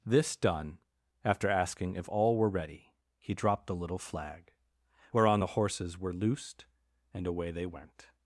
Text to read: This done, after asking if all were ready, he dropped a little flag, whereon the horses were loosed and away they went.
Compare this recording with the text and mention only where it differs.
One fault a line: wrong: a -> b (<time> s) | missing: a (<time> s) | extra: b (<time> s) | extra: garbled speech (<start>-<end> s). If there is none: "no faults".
wrong: a -> the (3.7 s)